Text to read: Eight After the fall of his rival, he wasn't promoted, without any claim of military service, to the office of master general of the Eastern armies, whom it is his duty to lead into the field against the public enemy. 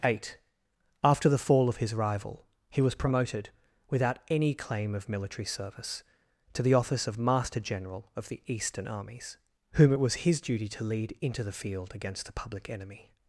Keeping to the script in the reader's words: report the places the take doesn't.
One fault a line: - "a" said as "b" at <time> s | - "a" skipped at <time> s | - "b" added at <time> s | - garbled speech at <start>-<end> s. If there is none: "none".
- "wasn't" said as "was" at 2.8 s
- "is" said as "was" at 10.0 s